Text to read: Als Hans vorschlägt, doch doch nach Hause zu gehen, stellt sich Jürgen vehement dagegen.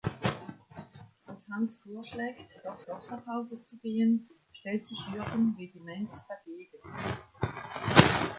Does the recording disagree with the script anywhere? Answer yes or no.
no